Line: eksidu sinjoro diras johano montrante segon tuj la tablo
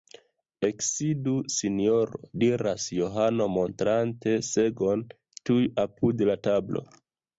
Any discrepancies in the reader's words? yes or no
yes